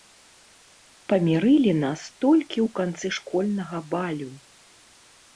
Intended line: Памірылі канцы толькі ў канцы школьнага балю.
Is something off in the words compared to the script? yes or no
yes